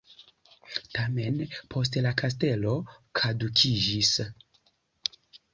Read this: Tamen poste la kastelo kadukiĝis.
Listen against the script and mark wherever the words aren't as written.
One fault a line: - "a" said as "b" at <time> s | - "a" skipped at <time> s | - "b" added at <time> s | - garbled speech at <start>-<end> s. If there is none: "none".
none